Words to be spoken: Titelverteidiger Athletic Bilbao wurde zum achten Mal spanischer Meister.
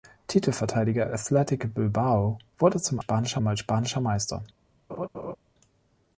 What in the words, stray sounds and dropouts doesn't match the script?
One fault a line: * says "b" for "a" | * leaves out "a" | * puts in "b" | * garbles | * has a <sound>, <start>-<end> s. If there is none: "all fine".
* says "spanischer" for "achten"
* has a laugh, 4.9-5.4 s